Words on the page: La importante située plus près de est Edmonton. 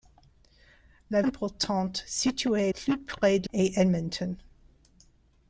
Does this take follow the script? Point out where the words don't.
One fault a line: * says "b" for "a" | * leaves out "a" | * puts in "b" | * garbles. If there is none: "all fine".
all fine